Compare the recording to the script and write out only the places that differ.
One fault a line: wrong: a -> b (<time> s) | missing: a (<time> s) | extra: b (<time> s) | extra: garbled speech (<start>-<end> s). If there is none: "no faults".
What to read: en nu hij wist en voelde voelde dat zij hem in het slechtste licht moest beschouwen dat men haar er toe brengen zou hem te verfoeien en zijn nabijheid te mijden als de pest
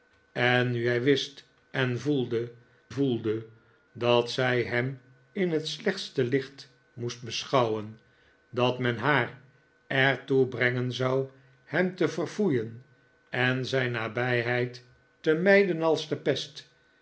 no faults